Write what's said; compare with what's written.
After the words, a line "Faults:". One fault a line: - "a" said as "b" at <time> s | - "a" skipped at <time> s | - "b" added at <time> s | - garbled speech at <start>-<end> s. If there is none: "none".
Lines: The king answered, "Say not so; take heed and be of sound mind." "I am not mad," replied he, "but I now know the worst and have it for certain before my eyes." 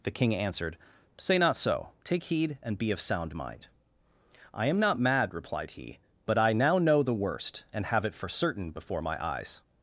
The king answered, "Say not so; take heed and be of sound mind." "I am not mad," replied he, "but I now know the worst and have it for certain before my eyes."
Faults:
none